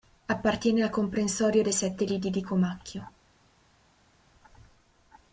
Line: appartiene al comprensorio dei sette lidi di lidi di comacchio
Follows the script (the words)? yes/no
no